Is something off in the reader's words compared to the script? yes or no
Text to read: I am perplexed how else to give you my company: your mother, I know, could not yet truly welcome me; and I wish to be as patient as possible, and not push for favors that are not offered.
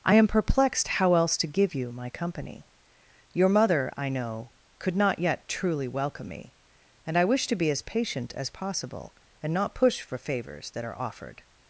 yes